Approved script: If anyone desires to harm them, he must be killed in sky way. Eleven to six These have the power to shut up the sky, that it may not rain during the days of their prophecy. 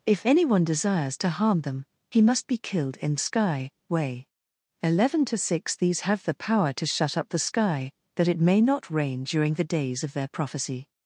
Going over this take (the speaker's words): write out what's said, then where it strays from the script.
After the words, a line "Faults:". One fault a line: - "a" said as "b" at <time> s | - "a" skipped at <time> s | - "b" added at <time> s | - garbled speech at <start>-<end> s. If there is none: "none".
If anyone desires to harm them, he must be killed in sky way. Eleven to six These have the power to shut up the sky, that it may not rain during the days of their prophecy.
Faults:
none